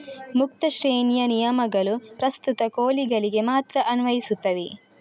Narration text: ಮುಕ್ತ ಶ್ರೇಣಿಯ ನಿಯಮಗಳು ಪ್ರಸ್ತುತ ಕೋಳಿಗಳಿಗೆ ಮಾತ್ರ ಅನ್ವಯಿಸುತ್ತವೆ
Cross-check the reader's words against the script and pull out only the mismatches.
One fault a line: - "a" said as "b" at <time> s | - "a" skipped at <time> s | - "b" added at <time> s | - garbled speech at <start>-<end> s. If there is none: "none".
none